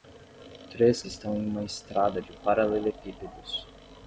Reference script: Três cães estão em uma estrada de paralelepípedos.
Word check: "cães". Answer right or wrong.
wrong